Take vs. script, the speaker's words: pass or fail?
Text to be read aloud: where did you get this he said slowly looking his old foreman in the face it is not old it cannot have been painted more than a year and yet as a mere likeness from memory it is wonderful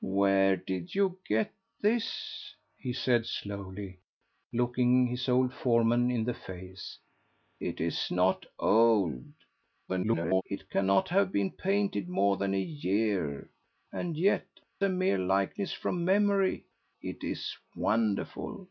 fail